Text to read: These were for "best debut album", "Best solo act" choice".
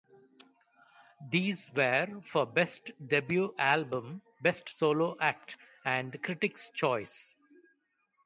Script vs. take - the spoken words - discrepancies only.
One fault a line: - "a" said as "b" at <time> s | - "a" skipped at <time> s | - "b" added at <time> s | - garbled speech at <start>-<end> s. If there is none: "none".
- "and critics" added at 5.9 s